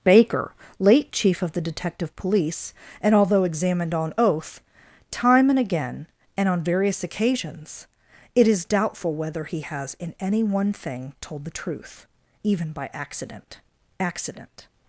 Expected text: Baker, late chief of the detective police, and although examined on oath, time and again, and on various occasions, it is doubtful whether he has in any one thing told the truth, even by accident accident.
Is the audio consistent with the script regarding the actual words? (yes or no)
yes